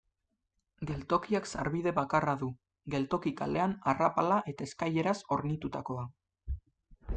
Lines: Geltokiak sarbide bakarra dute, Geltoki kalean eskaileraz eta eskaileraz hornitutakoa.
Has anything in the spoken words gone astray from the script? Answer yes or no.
yes